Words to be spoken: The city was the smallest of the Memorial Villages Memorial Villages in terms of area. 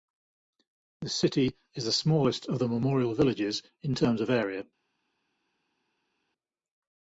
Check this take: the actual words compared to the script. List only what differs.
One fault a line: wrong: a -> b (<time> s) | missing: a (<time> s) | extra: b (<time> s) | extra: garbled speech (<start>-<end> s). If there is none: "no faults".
wrong: was -> is (1.7 s)
missing: Memorial Villages (3.6 s)